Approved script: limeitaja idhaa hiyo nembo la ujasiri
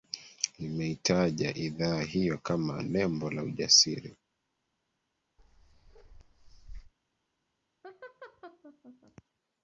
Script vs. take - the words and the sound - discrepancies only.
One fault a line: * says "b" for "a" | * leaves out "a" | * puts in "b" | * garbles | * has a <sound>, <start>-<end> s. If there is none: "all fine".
* puts in "kama"
* has a bark, 5.4-6.9 s
* has a laugh, 7.8-9.2 s